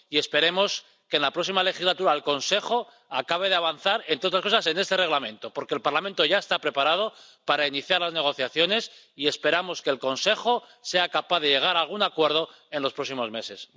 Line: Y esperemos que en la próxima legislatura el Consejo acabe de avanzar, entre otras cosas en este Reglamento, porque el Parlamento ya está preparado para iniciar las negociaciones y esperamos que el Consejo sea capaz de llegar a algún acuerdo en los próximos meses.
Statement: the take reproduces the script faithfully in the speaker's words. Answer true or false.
true